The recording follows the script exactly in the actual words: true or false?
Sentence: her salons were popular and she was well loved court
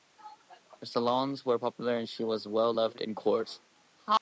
false